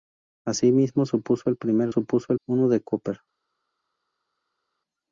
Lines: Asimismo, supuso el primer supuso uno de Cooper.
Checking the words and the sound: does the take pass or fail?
pass